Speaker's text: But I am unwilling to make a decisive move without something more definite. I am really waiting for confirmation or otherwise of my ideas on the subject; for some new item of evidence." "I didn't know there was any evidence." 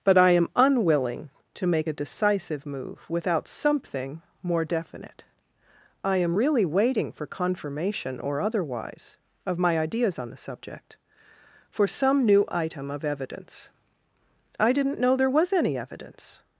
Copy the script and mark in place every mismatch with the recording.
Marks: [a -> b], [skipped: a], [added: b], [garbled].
But I am unwilling to make a decisive move without something more definite. I am really waiting for confirmation or otherwise of my ideas on the subject; for some new item of evidence." "I didn't know there was any evidence."